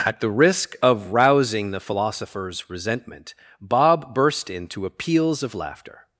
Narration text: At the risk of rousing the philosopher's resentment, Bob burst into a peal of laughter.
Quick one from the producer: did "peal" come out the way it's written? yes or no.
no